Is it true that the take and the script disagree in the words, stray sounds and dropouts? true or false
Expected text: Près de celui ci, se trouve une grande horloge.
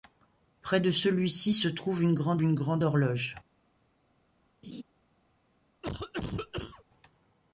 true